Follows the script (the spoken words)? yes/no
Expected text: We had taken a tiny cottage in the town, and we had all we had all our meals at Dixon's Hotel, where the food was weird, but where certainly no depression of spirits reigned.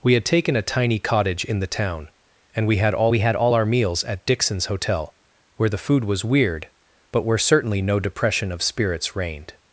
yes